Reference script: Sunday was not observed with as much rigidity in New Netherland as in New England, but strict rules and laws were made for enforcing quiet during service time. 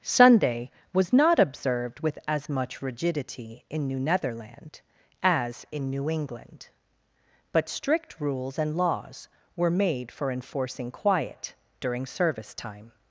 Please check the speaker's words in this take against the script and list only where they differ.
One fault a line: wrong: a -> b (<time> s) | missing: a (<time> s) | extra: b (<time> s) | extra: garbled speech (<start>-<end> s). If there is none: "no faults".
no faults